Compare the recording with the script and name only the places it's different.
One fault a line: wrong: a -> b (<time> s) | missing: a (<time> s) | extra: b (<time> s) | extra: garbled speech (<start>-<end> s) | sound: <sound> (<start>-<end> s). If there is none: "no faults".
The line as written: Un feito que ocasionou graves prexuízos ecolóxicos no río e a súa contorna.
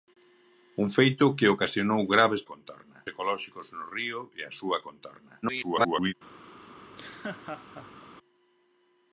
wrong: prexuízos -> contorna (2.5 s)
extra: garbled speech (5.4-6.1 s)
sound: laugh (6.8-8.1 s)